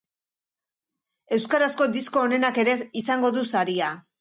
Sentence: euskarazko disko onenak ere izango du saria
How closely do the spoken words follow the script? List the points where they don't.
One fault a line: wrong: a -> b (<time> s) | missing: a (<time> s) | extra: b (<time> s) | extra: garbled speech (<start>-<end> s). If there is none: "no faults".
no faults